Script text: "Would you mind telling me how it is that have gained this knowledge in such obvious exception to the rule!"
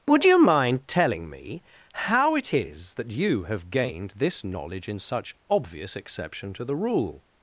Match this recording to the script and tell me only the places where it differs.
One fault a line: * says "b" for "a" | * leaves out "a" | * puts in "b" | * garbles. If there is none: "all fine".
* puts in "you"